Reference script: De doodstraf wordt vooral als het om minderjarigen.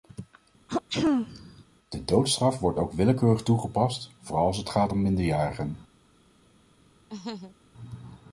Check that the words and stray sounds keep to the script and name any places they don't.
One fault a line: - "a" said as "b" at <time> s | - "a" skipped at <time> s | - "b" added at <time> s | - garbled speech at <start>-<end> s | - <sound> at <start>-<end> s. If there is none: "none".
- throat clearing at 0.7-1.6 s
- "ook willekeurig toegepast" added at 2.8 s
- "gaat" added at 4.7 s
- laugh at 7.1-7.6 s